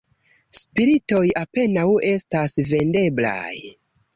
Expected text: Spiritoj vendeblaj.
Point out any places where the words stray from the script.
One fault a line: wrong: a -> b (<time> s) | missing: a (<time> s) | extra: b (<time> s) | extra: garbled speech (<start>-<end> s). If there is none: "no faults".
extra: apenaŭ estas (1.4 s)